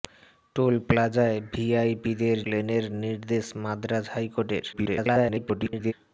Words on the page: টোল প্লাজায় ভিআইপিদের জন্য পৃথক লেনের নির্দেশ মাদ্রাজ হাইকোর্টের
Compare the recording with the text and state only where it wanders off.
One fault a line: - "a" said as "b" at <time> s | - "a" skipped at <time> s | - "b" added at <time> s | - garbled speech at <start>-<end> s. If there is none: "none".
- "জন্য পৃথক" skipped at 2.4 s
- garbled speech at 4.7-5.9 s